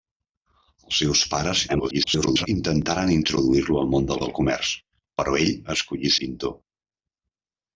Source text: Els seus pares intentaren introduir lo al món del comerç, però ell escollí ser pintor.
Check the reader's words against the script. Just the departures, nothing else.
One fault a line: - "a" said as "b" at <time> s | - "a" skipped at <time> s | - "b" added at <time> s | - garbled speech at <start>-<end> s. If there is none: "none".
- garbled speech at 1.7-2.5 s
- "del" added at 4.2 s
- "ser" skipped at 6.1 s